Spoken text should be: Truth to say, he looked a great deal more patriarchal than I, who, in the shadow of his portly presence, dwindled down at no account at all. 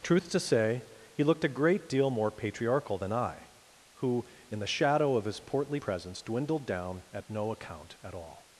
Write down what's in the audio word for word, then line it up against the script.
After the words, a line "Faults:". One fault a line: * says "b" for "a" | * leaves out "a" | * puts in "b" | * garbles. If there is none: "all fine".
Truth to say, he looked a great deal more patriarchal than I, who, in the shadow of his portly presence, dwindled down at no account at all.
Faults:
all fine